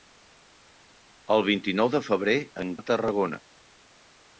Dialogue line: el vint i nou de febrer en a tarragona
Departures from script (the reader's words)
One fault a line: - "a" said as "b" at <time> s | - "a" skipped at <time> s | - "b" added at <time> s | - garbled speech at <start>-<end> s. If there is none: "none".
none